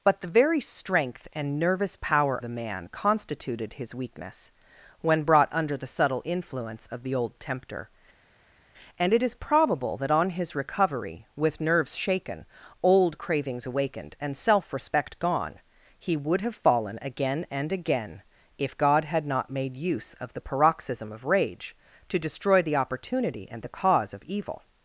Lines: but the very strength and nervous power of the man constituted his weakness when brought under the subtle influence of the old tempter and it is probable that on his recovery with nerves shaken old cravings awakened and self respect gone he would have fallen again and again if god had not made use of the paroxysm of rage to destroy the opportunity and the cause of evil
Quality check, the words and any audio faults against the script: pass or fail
fail